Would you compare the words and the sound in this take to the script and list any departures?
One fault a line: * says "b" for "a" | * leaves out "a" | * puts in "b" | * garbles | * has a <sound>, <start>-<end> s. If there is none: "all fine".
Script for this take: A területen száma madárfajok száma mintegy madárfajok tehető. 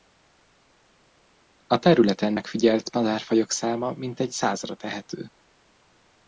* says "megfigyelt" for "száma"
* says "százra" for "madárfajok"